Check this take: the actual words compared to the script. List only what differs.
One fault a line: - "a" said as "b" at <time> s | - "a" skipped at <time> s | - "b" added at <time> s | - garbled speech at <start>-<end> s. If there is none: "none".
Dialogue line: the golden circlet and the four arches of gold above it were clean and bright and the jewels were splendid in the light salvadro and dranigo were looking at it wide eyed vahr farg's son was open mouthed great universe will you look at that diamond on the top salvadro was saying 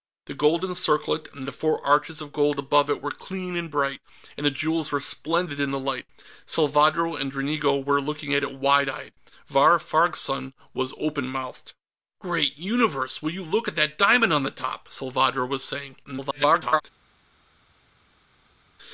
- garbled speech at 16.0-16.8 s